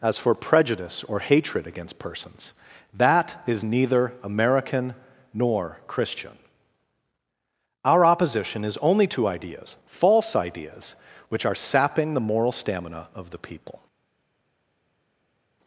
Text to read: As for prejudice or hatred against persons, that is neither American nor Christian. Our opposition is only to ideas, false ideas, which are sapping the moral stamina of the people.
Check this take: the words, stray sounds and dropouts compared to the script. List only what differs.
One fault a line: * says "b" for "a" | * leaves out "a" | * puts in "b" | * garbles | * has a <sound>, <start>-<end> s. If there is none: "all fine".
all fine